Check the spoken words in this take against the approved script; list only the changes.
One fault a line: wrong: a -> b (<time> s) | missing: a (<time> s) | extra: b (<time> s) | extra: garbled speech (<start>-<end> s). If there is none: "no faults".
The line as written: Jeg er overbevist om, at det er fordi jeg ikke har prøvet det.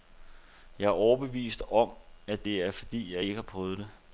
no faults